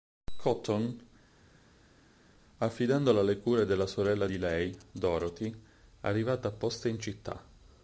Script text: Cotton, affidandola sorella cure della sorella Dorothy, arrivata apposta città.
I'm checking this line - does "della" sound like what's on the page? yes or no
yes